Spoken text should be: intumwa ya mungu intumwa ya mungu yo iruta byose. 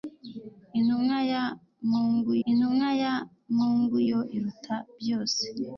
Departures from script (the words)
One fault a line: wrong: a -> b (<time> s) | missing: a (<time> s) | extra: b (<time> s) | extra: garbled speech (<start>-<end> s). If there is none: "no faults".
no faults